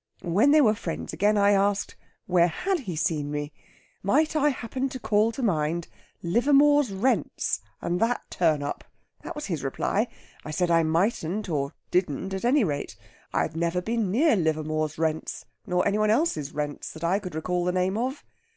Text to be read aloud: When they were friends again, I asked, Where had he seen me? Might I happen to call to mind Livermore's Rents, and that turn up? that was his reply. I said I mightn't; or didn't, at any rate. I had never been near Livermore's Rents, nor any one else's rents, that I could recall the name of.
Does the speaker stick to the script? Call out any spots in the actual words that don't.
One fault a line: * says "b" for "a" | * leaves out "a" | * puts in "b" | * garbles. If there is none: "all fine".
all fine